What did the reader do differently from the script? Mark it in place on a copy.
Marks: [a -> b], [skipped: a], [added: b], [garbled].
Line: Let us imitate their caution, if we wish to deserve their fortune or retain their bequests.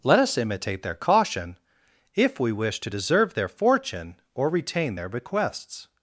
Let us imitate their caution, if we wish to deserve their fortune or retain their bequests.